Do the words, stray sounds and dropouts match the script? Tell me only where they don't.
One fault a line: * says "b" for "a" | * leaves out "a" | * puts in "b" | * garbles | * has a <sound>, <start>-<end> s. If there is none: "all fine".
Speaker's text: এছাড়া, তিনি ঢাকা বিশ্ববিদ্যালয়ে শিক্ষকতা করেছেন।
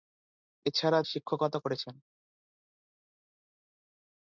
* leaves out "তিনি ঢাকা বিশ্ববিদ্যালয়ে"